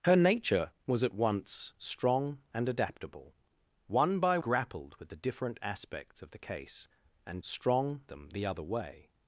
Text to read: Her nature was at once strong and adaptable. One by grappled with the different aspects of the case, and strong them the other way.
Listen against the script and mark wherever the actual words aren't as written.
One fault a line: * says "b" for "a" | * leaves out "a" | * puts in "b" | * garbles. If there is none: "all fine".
all fine